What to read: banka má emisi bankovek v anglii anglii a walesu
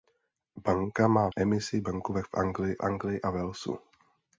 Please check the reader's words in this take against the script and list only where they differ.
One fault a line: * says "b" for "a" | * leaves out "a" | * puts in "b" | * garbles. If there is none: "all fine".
all fine